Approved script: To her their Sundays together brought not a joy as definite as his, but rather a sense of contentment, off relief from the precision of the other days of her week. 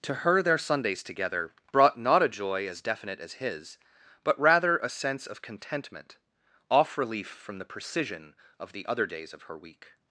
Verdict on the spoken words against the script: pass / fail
pass